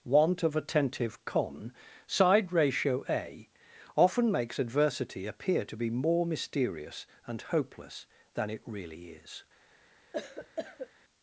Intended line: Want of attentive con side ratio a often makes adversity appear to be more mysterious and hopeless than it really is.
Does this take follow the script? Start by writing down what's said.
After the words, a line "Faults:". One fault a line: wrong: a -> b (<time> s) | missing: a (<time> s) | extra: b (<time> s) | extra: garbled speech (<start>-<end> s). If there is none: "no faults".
Want of attentive con side ratio a often makes adversity appear to be more mysterious and hopeless than it really is.
Faults:
no faults